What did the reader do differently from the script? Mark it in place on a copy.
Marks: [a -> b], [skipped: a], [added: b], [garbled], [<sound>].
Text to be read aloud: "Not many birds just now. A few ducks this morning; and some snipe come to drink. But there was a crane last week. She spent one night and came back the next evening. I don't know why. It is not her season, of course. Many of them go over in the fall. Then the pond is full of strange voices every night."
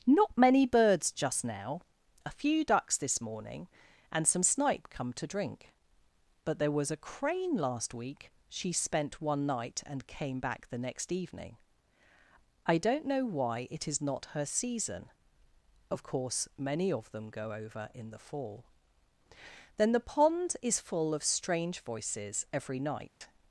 "Not many birds just now. A few ducks this morning; and some snipe come to drink. But there was a crane last week. She spent one night and came back the next evening. I don't know why. It is not her season, of course. Many of them go over in the fall. Then the pond is full of strange voices every night." [dropout]